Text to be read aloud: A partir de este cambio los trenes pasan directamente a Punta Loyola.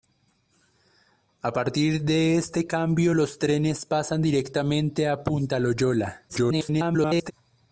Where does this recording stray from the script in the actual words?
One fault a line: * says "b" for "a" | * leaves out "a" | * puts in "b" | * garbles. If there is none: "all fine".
* garbles